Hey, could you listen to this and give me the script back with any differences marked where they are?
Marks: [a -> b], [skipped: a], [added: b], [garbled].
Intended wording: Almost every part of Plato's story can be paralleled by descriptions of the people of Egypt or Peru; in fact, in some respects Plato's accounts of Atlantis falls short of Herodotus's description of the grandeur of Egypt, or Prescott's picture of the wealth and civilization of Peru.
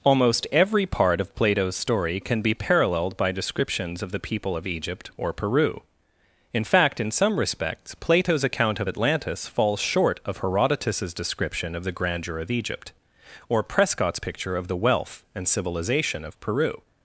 Almost every part of Plato's story can be paralleled by descriptions of the people of Egypt or Peru; in fact, in some respects Plato's [accounts -> account] of Atlantis falls short of Herodotus's description of the grandeur of Egypt, or Prescott's picture of the wealth and civilization of Peru.